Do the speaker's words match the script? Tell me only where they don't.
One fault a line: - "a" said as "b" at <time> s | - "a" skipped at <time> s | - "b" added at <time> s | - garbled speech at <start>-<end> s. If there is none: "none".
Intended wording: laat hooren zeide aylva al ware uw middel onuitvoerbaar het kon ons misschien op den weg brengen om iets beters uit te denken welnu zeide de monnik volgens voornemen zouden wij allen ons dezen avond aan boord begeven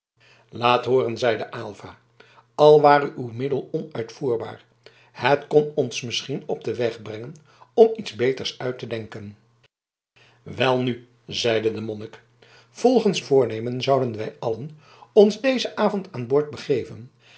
none